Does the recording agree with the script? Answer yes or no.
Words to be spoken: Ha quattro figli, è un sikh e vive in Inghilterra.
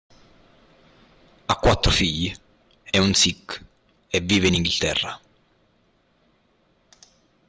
yes